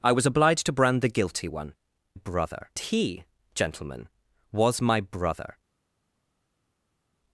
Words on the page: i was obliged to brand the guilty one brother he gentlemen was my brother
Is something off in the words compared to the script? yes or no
no